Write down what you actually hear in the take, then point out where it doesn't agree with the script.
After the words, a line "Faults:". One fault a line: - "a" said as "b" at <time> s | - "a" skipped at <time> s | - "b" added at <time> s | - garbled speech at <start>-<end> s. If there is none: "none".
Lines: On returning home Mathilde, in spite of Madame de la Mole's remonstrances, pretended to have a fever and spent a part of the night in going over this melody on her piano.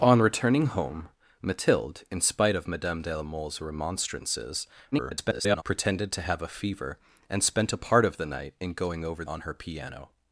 On returning home Mathilde, in spite of Madame de la Mole's remonstrances, [garbled] pretended to have a fever and spent a part of the night in going over on her piano.
Faults:
- garbled speech at 4.9-5.6 s
- "this melody" skipped at 9.2 s